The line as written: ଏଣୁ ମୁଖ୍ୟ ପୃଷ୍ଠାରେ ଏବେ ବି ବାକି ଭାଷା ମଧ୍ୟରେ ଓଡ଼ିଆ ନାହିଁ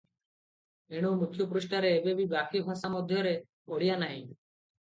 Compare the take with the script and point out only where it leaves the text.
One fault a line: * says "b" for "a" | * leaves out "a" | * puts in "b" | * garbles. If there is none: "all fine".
all fine